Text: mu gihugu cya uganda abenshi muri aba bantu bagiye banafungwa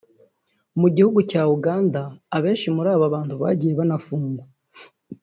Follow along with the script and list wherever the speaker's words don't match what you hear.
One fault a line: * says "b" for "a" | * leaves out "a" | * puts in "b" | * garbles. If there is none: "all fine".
all fine